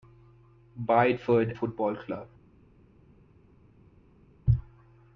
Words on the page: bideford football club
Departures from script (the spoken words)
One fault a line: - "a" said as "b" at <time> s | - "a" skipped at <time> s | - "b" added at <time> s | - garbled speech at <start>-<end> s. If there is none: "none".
none